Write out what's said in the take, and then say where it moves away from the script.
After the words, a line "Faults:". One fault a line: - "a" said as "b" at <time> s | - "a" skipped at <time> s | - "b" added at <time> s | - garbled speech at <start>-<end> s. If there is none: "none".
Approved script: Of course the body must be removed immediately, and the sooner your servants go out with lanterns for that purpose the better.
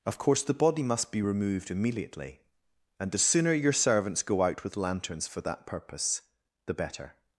Of course the body must be removed immediately, and the sooner your servants go out with lanterns for that purpose the better.
Faults:
none